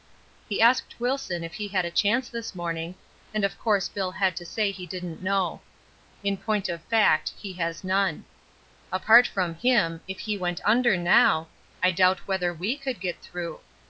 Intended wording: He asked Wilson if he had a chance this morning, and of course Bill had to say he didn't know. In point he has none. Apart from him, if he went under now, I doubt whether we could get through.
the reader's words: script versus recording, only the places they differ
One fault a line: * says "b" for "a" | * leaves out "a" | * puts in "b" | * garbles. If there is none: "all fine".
* puts in "of fact"